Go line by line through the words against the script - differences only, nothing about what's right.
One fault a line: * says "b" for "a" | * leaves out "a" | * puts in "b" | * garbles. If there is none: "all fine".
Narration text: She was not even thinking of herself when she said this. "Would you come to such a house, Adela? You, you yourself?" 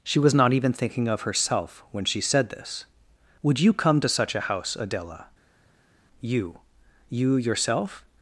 all fine